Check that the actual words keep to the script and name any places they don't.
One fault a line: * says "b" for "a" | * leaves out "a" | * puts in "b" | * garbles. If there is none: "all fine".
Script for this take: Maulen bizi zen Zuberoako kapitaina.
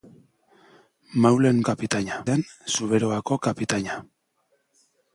* says "kapitaina" for "bizi"